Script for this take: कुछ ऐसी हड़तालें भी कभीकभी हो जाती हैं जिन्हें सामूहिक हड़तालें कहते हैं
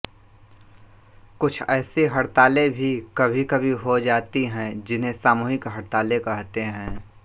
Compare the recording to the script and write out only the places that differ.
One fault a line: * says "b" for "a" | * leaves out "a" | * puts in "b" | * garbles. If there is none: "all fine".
all fine